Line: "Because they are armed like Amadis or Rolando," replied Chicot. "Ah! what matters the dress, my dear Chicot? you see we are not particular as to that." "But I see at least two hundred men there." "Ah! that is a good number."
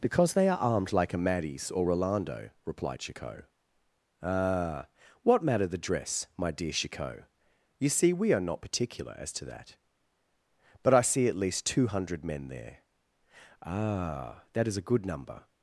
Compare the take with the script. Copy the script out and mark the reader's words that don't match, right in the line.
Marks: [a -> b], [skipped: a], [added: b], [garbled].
"Because they are armed like Amadis or Rolando," replied Chicot. "Ah! what [matters -> matter] the dress, my dear Chicot? you see we are not particular as to that." "But I see at least two hundred men there." "Ah! that is a good number."